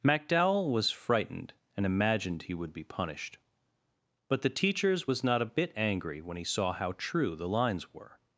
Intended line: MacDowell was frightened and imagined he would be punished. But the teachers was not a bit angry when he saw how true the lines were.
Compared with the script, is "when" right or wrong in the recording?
right